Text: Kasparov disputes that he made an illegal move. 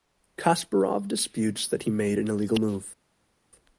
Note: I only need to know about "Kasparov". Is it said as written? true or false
true